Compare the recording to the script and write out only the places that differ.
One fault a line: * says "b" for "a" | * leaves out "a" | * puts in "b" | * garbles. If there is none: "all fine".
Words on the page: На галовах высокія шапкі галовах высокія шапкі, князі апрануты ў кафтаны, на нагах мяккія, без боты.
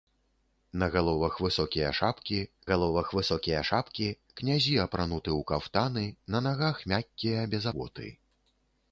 all fine